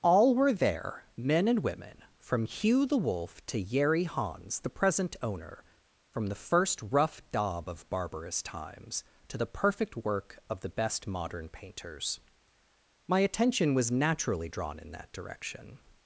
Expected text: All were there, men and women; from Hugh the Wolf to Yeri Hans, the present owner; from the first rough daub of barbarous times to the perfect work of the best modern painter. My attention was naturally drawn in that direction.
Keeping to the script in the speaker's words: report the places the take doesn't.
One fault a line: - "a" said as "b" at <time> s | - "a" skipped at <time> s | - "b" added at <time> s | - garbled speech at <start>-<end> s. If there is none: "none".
- "painter" said as "painters" at 11.5 s